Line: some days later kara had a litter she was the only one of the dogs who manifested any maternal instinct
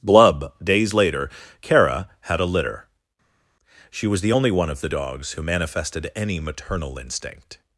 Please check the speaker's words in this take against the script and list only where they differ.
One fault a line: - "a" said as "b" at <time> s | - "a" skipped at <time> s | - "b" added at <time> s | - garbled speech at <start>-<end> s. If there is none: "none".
- "some" said as "blub" at 0.0 s